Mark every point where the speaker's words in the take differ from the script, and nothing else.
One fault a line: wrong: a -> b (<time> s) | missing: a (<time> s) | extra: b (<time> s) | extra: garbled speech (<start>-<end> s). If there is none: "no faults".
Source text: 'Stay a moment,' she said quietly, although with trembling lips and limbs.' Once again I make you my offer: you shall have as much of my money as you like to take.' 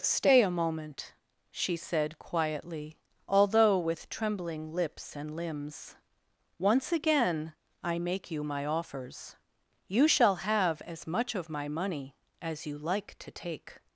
wrong: offer -> offers (8.7 s)